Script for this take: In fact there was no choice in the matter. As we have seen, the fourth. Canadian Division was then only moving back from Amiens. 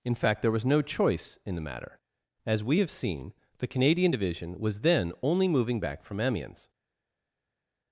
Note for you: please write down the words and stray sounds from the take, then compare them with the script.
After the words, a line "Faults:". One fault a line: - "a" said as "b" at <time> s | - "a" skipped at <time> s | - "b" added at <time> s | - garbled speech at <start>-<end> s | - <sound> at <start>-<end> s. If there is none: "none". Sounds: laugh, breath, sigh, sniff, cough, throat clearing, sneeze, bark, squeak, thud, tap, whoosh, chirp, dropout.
In fact there was no choice in the matter. As we have seen, the. Canadian Division was then only moving back from Amiens.
Faults:
- "fourth" skipped at 3.7 s